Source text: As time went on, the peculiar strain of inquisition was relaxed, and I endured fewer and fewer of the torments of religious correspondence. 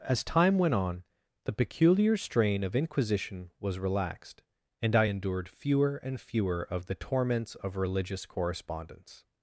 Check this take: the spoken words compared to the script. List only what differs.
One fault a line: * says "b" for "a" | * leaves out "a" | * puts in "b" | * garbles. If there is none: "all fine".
all fine